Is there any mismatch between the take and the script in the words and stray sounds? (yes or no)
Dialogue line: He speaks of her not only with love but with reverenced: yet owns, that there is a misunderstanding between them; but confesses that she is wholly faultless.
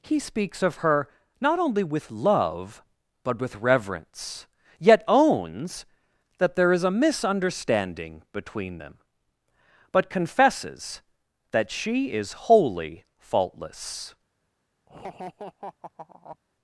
yes